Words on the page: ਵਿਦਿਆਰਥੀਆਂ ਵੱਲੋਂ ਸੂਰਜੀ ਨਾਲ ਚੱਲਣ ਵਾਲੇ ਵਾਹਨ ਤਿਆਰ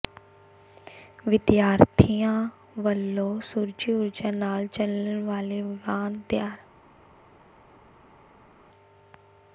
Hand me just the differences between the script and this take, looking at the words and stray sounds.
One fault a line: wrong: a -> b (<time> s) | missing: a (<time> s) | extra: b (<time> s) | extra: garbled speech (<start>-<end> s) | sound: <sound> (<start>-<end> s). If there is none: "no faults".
extra: ਊਰਜਾ (3.9 s)